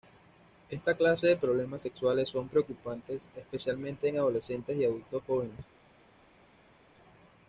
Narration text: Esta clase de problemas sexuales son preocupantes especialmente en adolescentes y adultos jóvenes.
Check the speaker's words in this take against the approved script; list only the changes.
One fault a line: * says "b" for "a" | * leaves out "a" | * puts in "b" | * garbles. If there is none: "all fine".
all fine